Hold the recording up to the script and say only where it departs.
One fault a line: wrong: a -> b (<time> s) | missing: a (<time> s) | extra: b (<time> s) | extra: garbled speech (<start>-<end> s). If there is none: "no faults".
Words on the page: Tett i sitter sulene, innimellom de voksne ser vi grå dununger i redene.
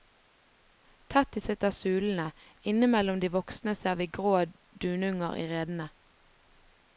no faults